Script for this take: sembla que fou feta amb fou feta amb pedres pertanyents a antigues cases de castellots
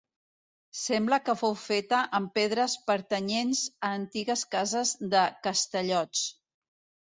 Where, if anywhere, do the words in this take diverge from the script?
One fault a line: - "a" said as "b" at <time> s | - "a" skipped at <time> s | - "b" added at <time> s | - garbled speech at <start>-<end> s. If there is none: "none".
- "fou feta amb" skipped at 2.3 s